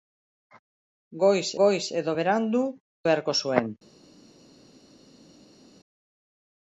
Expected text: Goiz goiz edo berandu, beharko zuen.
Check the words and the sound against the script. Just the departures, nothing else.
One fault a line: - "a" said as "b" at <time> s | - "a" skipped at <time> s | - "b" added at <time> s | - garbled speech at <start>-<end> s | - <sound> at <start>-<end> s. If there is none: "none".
none